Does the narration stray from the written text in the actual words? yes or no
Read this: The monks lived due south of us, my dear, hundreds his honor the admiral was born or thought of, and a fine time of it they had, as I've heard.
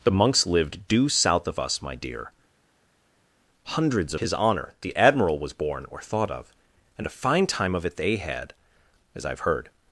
no